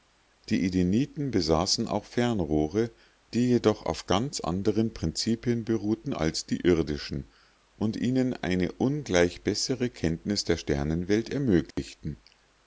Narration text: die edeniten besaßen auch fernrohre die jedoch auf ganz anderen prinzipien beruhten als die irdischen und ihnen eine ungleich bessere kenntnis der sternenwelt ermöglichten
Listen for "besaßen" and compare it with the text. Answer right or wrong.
right